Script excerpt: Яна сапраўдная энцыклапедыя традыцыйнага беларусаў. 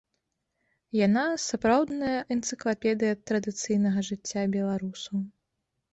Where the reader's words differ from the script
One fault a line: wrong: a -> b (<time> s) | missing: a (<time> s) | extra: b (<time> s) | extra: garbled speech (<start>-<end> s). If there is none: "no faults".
extra: жыцця (4.1 s)